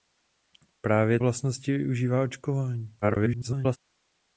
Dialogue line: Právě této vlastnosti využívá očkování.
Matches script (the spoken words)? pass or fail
fail